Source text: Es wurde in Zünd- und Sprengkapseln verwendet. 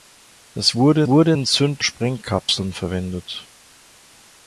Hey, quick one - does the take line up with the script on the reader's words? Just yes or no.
no